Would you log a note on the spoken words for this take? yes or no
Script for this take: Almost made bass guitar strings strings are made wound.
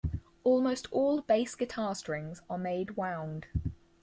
yes